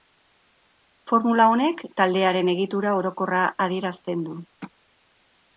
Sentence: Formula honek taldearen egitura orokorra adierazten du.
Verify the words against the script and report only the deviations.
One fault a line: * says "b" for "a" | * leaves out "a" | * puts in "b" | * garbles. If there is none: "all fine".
all fine